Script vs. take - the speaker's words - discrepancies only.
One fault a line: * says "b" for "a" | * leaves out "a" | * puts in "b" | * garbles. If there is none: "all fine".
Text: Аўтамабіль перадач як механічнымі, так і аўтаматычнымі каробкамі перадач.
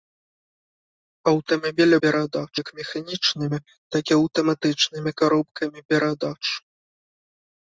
all fine